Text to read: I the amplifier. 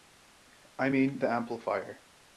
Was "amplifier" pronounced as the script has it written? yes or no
yes